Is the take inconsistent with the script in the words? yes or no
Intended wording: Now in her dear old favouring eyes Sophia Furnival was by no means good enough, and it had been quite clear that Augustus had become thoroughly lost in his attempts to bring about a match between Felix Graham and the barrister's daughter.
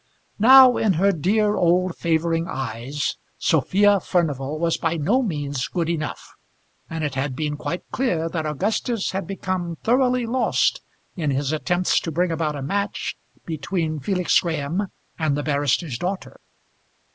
no